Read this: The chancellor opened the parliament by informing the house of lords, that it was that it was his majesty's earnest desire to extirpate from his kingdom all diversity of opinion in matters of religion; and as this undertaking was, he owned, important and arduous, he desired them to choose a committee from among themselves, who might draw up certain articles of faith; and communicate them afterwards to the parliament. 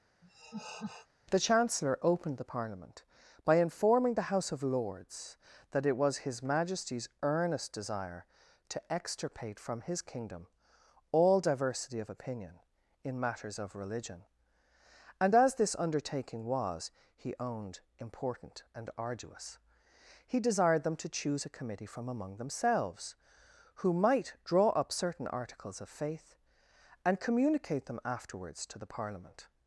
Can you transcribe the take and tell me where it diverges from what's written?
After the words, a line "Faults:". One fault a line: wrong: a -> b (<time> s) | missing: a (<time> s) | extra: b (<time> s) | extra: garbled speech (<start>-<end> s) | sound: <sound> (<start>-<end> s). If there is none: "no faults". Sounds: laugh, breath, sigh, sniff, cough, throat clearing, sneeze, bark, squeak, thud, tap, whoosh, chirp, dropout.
The chancellor opened the parliament by informing the house of lords, that it was his majesty's earnest desire to extirpate from his kingdom all diversity of opinion in matters of religion; and as this undertaking was, he owned, important and arduous, he desired them to choose a committee from among themselves, who might draw up certain articles of faith; and communicate them afterwards to the parliament.
Faults:
sound: laugh (0.2-1.1 s)
missing: that it was (6.2 s)